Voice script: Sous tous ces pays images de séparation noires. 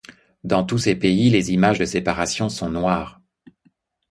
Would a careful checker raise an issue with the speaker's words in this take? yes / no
yes